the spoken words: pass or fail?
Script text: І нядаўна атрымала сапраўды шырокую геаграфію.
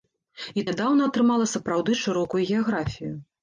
pass